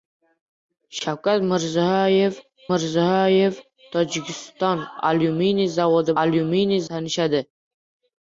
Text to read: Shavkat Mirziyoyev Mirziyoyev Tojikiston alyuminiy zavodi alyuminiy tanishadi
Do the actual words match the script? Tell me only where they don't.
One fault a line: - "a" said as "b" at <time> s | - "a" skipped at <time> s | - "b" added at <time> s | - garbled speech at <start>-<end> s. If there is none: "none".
none